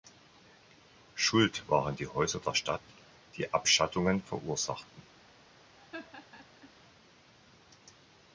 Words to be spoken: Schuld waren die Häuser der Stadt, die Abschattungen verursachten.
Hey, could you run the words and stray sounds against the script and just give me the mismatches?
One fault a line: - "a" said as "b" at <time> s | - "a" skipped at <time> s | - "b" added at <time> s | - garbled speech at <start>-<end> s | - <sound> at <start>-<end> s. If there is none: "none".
- laugh at 5.8-6.7 s